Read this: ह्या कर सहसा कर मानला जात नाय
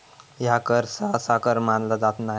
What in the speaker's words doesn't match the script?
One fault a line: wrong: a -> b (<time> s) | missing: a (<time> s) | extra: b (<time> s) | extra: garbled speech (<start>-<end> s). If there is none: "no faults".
no faults